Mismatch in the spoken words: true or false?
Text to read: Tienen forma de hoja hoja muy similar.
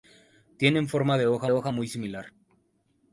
false